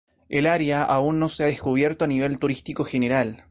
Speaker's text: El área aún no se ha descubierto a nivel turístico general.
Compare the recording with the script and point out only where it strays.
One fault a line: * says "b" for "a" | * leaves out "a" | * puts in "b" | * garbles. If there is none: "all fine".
all fine